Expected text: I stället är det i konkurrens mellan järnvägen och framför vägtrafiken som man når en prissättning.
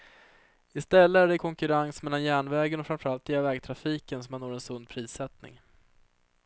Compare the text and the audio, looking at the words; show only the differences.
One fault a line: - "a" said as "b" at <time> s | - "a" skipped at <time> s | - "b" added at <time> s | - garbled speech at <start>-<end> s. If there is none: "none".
- "allt" added at 3.1 s
- "sund" added at 4.6 s